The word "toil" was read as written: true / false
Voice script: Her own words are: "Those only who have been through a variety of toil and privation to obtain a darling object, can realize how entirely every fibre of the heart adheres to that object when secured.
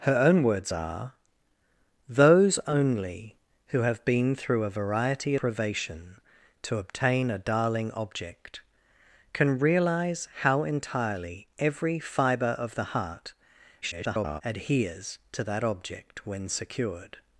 false